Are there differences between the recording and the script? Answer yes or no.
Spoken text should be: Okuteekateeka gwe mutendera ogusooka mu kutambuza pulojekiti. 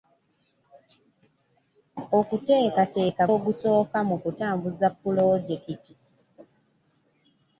yes